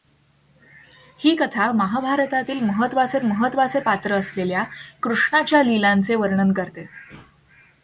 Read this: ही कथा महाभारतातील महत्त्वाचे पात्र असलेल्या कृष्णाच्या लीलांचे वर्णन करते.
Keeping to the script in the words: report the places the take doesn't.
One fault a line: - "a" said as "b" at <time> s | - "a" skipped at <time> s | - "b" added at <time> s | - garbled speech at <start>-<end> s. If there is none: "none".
- "महत्त्वाचे" added at 3.2 s